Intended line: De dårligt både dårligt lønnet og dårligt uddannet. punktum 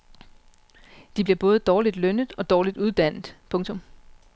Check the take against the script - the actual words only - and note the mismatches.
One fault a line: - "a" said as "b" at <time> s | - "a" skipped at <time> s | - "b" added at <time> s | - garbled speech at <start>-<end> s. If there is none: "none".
- "dårligt" said as "bliver" at 1.2 s